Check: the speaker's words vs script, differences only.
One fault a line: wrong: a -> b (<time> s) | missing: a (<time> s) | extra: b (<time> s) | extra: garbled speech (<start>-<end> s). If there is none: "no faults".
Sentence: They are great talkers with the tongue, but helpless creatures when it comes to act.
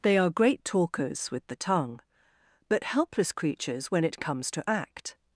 no faults